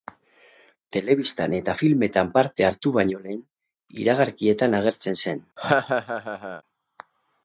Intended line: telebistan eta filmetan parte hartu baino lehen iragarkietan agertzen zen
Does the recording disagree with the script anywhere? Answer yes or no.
no